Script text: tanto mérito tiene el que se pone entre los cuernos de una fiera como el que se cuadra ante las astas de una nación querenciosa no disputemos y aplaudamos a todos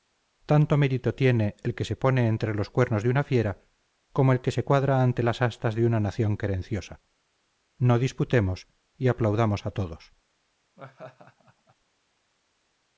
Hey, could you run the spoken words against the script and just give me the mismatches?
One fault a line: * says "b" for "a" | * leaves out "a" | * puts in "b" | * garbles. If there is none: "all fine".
all fine